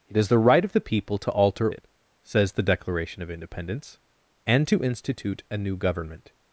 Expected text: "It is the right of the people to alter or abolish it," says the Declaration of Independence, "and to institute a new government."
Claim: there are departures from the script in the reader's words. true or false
true